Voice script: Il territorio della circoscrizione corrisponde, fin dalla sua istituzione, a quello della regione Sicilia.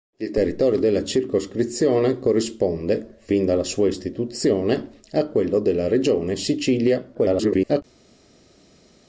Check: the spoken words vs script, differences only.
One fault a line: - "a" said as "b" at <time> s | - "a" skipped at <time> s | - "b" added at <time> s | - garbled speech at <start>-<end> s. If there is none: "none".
- garbled speech at 7.1-7.8 s